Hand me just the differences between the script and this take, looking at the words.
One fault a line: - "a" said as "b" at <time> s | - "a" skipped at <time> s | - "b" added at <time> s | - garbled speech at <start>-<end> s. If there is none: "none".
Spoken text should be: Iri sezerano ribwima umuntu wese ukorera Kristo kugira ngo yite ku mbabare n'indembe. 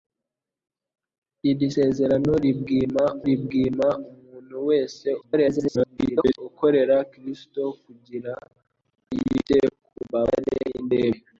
- "ribwima" added at 3.3 s
- garbled speech at 5.2-6.4 s
- "ngo" skipped at 8.3 s